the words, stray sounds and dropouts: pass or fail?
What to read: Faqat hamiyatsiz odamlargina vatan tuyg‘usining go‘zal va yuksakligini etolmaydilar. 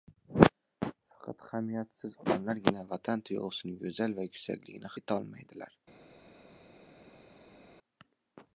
pass